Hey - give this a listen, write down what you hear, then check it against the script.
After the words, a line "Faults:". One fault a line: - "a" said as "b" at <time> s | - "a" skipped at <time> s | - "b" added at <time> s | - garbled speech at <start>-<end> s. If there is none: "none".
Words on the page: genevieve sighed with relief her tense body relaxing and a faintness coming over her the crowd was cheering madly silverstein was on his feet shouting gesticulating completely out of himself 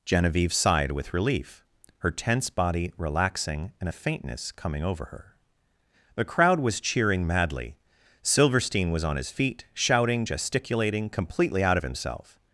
genevieve sighed with relief her tense body relaxing and a faintness coming over her the crowd was cheering madly silverstein was on his feet shouting gesticulating completely out of himself
Faults:
none